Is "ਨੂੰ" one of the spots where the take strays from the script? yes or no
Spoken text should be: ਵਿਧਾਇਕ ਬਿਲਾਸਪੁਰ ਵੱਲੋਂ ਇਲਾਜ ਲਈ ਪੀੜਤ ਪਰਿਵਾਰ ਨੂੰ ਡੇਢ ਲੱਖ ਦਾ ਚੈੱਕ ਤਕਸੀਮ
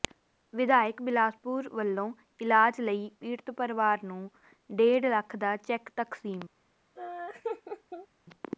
no